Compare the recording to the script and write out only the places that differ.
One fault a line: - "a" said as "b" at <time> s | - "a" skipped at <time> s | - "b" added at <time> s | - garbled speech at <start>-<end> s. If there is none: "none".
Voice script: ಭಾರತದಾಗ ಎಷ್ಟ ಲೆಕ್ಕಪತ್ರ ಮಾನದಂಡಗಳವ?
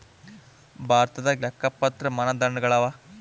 - "ಎಷ್ಟ" skipped at 1.4 s